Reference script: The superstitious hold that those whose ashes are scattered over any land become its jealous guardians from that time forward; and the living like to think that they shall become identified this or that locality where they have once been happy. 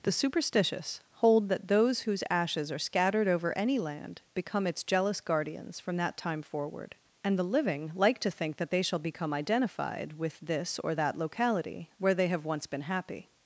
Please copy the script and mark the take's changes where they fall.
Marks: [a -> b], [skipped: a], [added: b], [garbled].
The superstitious hold that those whose ashes are scattered over any land become its jealous guardians from that time forward; and the living like to think that they shall become identified [added: with] this or that locality where they have once been happy.